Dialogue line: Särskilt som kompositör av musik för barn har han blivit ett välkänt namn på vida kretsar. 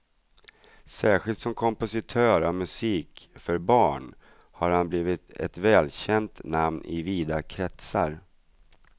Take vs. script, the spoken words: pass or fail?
fail